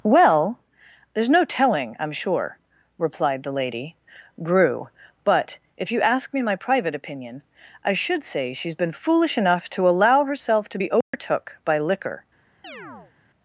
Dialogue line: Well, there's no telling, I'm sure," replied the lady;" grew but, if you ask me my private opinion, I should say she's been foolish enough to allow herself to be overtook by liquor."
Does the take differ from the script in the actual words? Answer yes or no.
no